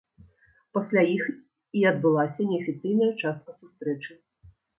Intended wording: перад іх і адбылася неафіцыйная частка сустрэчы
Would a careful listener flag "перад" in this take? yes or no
yes